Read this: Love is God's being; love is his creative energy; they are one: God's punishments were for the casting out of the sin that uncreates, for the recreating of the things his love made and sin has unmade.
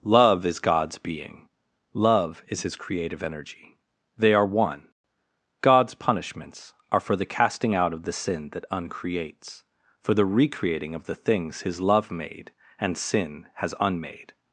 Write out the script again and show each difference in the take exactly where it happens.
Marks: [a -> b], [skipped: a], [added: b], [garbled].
Love is God's being; love is his creative energy; they are one: God's punishments [were -> are] for the casting out of the sin that uncreates, for the recreating of the things his love made and sin has unmade.